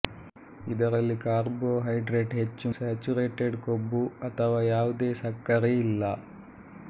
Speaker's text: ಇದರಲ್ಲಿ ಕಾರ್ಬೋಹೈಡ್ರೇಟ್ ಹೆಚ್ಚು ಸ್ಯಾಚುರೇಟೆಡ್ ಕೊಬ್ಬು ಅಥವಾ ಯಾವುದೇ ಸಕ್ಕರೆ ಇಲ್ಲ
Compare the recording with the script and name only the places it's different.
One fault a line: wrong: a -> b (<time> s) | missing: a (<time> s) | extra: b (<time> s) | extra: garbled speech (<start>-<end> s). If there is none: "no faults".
no faults